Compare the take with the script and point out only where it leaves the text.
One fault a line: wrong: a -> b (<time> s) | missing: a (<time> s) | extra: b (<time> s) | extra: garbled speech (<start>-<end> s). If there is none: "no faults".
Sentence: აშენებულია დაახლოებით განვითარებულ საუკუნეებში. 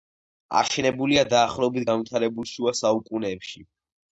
extra: შუა (2.5 s)